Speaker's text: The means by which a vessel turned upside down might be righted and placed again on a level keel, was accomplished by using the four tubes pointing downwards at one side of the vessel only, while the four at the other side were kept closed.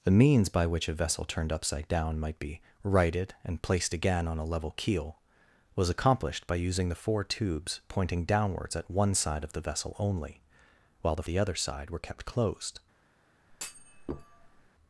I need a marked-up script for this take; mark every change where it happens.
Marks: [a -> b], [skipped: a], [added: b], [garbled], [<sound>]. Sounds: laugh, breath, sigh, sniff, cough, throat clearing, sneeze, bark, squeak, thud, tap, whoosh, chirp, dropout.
The means by which a vessel turned upside down might be righted and placed again on a level keel, was accomplished by using the four tubes pointing downwards at one side of the vessel only, while the [skipped: four at] the other side were kept closed. [thud]